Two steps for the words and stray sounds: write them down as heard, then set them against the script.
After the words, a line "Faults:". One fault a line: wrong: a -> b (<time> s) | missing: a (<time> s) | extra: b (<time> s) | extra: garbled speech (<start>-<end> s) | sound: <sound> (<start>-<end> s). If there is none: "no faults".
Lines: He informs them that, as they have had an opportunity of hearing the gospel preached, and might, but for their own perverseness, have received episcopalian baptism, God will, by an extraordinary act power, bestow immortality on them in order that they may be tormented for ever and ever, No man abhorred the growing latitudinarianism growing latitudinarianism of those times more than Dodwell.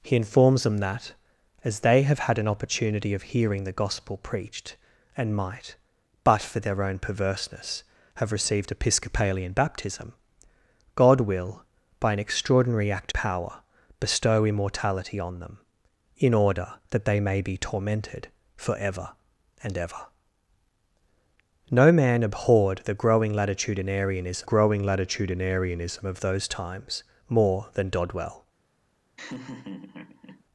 He informs them that, as they have had an opportunity of hearing the gospel preached, and might, but for their own perverseness, have received episcopalian baptism, God will, by an extraordinary act power, bestow immortality on them in order that they may be tormented for ever and ever, No man abhorred the growing latitudinarianism growing latitudinarianism of those times more than Dodwell.
Faults:
sound: laugh (29.2-30.4 s)